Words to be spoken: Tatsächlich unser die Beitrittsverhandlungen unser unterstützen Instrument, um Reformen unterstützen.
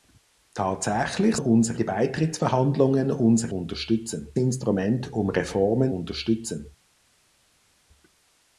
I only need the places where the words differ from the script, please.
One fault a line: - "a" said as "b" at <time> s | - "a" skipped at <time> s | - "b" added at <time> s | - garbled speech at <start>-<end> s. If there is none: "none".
none